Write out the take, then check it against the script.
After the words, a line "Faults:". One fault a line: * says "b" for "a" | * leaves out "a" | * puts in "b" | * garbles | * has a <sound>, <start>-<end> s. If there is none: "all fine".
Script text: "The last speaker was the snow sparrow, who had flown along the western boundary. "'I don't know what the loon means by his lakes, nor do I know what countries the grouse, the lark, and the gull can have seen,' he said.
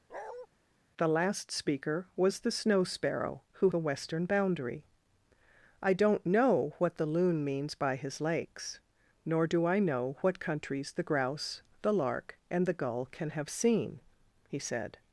"The last speaker was the snow sparrow, who the western boundary. "'I don't know what the loon means by his lakes, nor do I know what countries the grouse, the lark, and the gull can have seen,' he said.
Faults:
* has a bark, 0.1-0.5 s
* leaves out "had flown along"